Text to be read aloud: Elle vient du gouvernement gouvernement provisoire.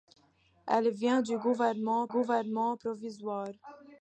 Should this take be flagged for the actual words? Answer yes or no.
no